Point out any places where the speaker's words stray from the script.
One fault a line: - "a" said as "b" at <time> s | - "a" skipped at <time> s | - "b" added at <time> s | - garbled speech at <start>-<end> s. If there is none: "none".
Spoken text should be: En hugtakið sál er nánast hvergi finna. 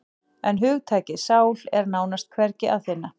- "að" added at 2.8 s